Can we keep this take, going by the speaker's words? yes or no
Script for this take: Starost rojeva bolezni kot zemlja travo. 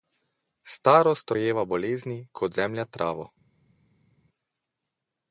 yes